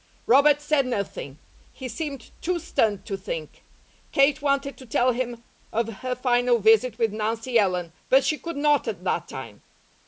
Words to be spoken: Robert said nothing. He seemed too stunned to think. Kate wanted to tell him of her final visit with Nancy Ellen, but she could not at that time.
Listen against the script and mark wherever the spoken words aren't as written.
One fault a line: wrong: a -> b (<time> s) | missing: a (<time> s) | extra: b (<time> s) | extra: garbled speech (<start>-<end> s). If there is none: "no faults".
no faults